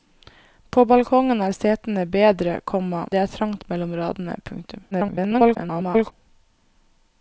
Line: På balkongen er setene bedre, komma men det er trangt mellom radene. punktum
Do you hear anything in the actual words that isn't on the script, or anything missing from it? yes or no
yes